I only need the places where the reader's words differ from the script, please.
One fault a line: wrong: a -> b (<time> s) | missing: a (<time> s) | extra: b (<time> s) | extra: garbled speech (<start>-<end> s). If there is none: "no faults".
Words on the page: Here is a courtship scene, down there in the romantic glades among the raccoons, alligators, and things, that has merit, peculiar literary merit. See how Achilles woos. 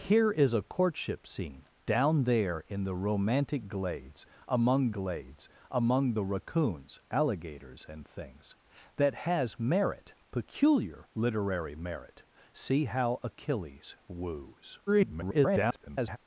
extra: glades among (4.9 s)
extra: garbled speech (14.9-16.2 s)